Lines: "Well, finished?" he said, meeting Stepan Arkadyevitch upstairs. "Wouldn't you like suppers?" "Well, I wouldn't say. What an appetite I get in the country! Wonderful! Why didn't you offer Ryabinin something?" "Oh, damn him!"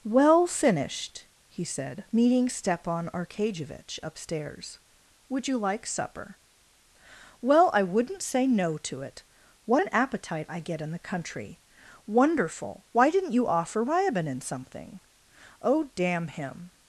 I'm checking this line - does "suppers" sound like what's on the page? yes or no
no